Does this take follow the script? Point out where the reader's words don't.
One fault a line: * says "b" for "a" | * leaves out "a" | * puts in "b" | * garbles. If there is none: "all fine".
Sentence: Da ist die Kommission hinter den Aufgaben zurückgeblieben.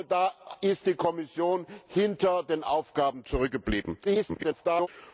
* garbles